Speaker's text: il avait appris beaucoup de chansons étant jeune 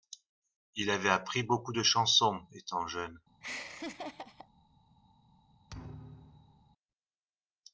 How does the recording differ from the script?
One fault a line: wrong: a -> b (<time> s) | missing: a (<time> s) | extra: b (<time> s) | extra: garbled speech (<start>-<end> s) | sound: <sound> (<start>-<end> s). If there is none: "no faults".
sound: laugh (3.4-4.5 s)
sound: thud (5.7-6.7 s)